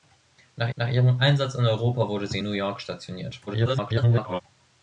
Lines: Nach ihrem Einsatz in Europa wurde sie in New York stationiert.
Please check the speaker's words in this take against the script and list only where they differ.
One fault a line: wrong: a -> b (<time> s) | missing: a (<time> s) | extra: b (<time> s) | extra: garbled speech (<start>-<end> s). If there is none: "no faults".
extra: nach (0.7 s)
missing: in (2.4 s)
extra: garbled speech (3.5-4.4 s)